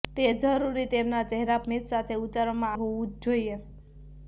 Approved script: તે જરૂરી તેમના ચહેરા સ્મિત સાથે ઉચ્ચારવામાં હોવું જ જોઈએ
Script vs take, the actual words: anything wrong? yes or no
no